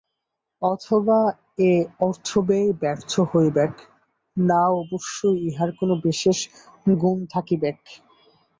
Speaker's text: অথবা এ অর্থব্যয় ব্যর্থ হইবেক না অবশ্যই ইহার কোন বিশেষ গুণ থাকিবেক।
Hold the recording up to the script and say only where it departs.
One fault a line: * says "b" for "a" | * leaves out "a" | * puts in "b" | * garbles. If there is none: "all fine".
all fine